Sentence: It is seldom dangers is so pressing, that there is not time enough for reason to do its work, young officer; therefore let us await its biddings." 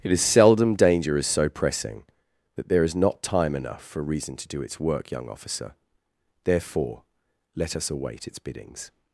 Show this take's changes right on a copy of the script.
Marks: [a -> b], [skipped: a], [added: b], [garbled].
It is seldom [dangers -> danger] is so pressing, that there is not time enough for reason to do its work, young officer; therefore let us await its biddings."